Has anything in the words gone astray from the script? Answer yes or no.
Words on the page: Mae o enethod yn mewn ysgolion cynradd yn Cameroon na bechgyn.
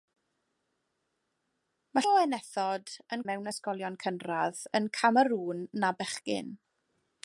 no